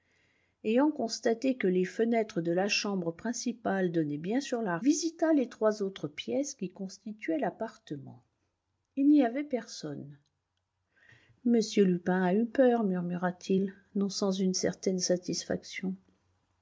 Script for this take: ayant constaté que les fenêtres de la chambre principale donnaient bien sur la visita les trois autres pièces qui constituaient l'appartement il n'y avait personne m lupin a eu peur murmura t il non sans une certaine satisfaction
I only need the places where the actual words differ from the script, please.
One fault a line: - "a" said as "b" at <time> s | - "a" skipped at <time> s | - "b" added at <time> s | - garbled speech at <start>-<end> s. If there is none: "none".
none